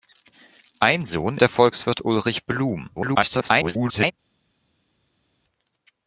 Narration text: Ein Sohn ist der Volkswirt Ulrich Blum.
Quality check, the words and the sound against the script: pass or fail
fail